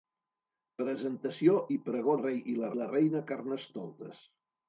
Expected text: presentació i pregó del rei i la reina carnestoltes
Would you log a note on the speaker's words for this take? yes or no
yes